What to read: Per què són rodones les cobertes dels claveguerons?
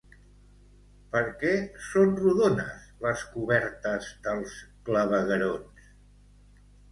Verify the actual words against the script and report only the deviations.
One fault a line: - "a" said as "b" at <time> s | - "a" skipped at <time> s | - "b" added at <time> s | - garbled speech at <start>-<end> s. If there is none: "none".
none